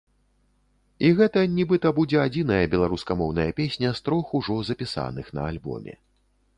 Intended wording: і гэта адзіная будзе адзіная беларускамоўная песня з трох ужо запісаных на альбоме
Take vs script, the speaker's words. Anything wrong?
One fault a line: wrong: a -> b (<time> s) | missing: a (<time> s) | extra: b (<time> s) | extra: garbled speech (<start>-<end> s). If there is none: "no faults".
wrong: адзіная -> нібыта (1.6 s)